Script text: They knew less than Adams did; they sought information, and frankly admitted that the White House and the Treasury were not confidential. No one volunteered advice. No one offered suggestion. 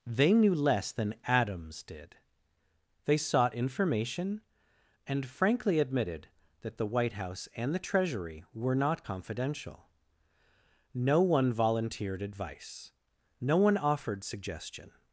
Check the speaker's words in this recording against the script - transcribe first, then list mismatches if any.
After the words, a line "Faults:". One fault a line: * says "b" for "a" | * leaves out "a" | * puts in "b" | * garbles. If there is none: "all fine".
They knew less than Adams did; they sought information, and frankly admitted that the White House and the Treasury were not confidential. No one volunteered advice. No one offered suggestion.
Faults:
all fine